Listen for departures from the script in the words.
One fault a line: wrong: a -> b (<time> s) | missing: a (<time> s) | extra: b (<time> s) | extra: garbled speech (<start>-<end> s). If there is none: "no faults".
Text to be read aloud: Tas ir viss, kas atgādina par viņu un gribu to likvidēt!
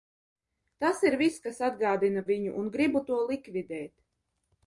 missing: par (2.2 s)